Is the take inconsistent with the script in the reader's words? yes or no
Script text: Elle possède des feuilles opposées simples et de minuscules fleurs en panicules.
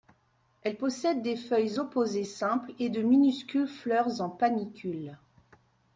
no